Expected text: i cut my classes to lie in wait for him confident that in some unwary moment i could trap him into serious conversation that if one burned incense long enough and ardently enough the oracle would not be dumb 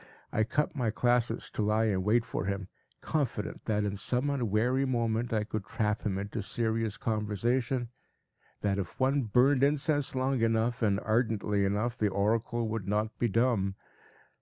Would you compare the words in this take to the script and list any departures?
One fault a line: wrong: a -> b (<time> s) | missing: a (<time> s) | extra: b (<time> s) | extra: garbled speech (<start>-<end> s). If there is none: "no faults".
no faults